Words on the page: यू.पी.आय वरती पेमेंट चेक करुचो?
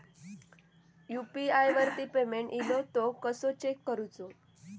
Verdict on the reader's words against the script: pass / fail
fail